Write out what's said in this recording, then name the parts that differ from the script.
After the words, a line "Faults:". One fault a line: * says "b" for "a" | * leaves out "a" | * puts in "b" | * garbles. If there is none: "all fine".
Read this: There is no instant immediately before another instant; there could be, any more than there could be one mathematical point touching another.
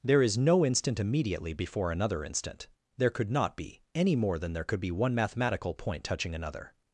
There is no instant immediately before another instant; there could not be, any more than there could be one mathematical point touching another.
Faults:
* puts in "not"